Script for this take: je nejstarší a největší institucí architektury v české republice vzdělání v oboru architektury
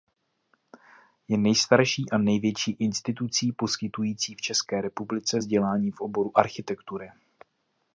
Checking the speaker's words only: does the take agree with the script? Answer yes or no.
no